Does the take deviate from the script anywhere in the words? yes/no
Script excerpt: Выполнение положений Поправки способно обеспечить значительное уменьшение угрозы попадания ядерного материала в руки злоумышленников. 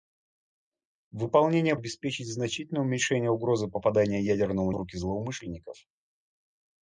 yes